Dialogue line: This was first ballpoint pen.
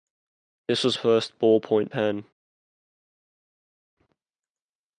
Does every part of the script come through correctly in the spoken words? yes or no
yes